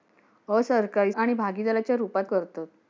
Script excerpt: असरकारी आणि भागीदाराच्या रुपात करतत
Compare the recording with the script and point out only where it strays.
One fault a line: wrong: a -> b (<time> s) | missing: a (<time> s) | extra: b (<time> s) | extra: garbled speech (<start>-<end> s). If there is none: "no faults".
no faults